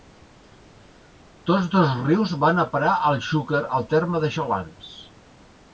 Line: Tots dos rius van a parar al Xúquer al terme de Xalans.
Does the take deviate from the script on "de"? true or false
false